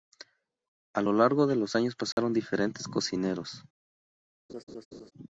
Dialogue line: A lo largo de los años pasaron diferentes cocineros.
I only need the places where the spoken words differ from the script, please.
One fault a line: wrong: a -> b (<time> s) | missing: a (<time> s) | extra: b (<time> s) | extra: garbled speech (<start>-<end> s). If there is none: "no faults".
no faults